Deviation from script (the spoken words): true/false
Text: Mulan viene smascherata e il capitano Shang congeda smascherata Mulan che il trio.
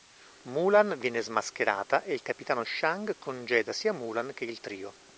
true